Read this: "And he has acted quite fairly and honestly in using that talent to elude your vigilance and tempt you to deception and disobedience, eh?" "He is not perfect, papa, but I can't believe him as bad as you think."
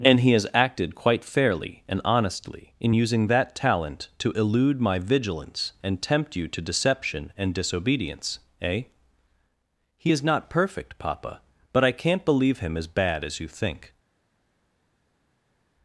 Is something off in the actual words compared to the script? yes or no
yes